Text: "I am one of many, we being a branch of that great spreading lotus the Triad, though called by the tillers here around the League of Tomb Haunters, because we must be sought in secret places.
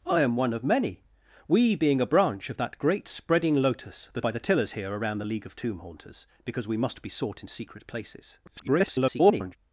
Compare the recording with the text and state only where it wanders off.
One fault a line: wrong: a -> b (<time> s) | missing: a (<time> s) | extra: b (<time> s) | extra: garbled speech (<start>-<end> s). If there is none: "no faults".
missing: Triad though called (4.2 s)
extra: garbled speech (8.5-9.6 s)